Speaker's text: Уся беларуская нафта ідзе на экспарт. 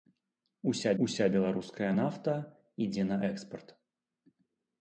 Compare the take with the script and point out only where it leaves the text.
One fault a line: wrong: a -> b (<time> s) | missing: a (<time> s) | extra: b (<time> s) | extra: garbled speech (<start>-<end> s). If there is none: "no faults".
extra: уся (1.0 s)